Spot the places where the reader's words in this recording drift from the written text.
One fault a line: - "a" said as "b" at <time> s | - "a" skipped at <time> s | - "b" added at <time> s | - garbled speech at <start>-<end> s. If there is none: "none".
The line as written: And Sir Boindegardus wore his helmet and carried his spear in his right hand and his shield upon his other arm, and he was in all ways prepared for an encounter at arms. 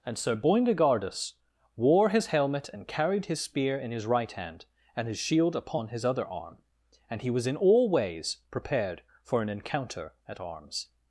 none